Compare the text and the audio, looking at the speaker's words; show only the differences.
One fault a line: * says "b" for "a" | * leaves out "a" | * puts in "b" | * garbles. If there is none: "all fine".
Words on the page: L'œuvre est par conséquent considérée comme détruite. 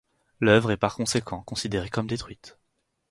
all fine